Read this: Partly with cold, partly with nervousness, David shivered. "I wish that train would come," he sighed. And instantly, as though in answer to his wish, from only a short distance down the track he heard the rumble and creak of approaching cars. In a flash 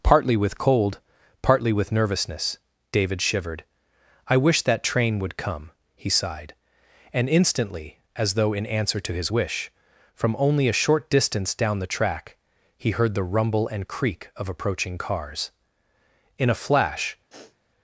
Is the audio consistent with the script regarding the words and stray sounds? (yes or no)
no